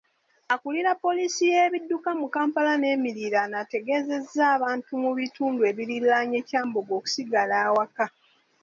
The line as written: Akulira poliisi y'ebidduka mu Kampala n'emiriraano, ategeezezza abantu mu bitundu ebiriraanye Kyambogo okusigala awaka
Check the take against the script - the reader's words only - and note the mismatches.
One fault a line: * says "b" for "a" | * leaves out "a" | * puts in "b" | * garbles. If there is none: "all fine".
all fine